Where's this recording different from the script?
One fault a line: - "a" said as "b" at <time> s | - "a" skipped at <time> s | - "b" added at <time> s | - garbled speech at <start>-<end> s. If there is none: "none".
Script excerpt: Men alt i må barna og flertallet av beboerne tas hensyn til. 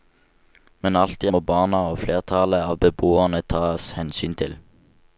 none